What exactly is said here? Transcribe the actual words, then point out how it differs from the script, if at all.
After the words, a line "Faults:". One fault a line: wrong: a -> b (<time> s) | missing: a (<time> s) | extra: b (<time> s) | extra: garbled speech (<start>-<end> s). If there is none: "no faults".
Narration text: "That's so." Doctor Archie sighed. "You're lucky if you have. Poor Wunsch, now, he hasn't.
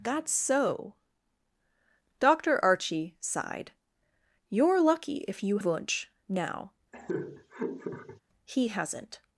"That's so." Doctor Archie sighed. "You're lucky if you Wunsch, now, he hasn't.
Faults:
missing: have Poor (5.6 s)